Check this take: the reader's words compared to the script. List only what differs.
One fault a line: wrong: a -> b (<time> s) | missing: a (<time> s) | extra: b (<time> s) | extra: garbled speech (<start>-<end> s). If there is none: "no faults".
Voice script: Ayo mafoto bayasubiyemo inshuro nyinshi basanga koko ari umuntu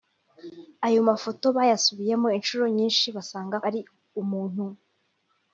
missing: koko (3.5 s)